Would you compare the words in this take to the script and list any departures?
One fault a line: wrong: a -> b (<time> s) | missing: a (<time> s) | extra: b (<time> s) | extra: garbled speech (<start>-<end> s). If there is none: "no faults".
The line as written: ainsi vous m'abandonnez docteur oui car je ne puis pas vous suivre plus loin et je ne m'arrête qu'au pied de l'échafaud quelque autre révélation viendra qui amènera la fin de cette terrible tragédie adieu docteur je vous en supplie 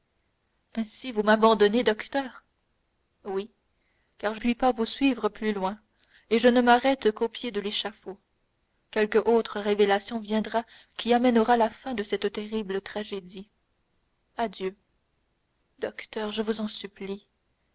missing: ne (4.4 s)